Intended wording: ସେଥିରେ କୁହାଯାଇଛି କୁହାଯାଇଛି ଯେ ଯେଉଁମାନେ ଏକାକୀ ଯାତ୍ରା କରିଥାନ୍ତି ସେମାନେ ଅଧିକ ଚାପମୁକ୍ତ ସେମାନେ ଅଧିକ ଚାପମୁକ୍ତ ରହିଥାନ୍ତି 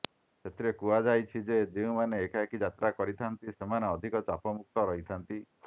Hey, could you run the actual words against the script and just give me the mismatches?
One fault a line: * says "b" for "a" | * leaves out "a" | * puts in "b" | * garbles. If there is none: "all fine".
* leaves out "କୁହାଯାଇଛି"
* leaves out "ସେମାନେ ଅଧିକ ଚାପମୁକ୍ତ"